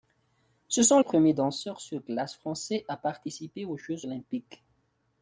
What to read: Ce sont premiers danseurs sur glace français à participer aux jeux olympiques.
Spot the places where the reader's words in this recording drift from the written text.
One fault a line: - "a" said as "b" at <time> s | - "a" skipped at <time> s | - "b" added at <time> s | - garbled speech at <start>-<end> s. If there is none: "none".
none